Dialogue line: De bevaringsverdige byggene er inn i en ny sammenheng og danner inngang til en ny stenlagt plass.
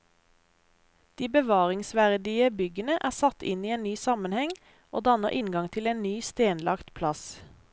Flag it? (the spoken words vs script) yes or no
yes